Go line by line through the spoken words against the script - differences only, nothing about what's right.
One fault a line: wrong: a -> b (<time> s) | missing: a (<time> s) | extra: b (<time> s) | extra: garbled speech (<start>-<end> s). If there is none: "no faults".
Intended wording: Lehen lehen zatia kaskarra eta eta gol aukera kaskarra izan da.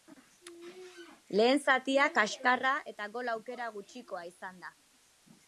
missing: lehen (1.6 s)
missing: eta (3.1 s)
wrong: kaskarra -> gutxikoa (3.8 s)